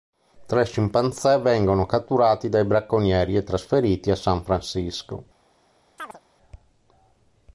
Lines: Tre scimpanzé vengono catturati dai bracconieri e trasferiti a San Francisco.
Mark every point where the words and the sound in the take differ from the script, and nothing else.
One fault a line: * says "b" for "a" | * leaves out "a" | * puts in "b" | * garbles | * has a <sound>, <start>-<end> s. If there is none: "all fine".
* has a chirp, 6.0-6.2 s